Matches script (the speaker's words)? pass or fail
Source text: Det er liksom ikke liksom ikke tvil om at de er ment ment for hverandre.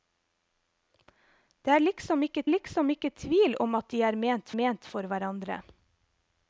pass